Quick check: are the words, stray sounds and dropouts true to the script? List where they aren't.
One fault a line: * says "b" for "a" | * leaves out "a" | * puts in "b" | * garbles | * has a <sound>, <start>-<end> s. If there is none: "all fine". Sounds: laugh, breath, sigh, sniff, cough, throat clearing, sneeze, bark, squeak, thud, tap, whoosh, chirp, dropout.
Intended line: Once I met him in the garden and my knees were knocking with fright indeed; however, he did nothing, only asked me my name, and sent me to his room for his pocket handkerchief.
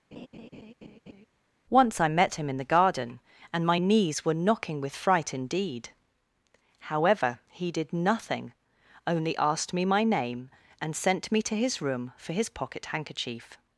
* has a laugh, 0.1-1.3 s